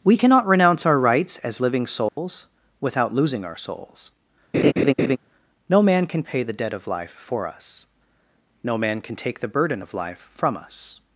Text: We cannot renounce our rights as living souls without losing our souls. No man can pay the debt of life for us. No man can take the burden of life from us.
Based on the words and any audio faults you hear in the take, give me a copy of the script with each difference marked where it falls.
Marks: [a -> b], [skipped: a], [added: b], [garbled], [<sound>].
We cannot renounce our rights as living souls [dropout] without losing our souls. [laugh] No man can pay the debt of life for us. No man can take the burden of life from us.